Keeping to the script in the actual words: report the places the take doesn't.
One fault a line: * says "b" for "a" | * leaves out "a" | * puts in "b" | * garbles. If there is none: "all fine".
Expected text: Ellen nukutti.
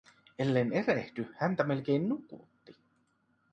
* puts in "erehdy häntä melkein"